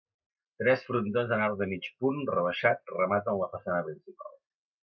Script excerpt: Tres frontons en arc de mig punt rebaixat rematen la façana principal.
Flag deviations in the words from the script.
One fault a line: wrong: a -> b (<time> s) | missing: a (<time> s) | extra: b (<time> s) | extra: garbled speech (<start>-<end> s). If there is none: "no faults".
no faults